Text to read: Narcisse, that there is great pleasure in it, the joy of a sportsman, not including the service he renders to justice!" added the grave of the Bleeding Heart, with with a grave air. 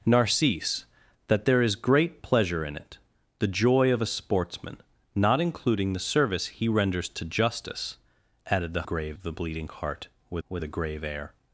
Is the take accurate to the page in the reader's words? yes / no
yes